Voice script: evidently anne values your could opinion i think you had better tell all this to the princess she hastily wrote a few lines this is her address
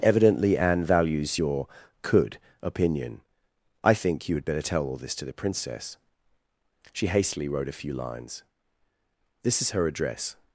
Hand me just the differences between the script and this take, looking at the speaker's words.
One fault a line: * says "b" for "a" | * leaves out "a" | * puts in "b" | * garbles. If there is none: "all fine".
all fine